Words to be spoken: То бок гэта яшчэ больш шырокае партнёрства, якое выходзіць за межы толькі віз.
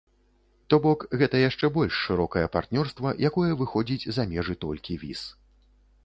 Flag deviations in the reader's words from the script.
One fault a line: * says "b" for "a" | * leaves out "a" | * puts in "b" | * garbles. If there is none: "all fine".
all fine